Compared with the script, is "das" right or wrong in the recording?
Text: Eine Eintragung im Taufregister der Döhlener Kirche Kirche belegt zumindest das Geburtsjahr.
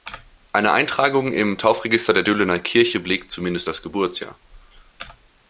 right